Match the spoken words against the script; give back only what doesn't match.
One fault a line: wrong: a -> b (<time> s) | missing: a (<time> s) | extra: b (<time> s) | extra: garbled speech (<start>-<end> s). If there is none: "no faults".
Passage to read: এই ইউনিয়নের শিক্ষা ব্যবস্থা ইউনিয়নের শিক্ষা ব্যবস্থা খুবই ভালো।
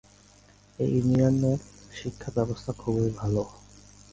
missing: ইউনিয়নের শিক্ষা ব্যবস্থা (2.7 s)